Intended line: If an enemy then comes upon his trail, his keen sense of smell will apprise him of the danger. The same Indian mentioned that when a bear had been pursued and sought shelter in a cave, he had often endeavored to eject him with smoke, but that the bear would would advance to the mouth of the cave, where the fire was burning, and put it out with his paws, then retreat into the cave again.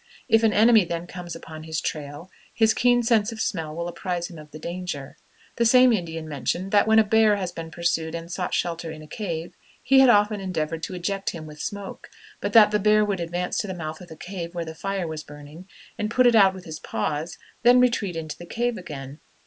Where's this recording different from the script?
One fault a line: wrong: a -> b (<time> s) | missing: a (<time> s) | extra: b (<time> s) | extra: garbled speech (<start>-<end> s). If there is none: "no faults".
missing: would (13.2 s)